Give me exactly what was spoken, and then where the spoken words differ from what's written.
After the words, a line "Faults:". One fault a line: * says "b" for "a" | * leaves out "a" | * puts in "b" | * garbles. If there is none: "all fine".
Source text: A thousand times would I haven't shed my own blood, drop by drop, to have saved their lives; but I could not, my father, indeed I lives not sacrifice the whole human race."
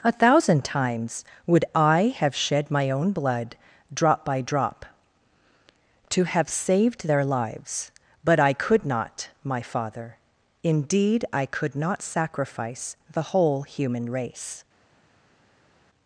A thousand times would I have shed my own blood, drop by drop, to have saved their lives; but I could not, my father, indeed I could not sacrifice the whole human race."
Faults:
* says "have" for "haven't"
* says "could" for "lives"